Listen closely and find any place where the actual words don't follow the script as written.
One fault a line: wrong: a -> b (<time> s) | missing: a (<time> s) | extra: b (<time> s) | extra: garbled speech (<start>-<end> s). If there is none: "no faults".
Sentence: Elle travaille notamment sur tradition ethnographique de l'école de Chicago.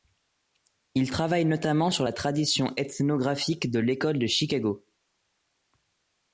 wrong: Elle -> Il (0.9 s)
extra: la (2.0 s)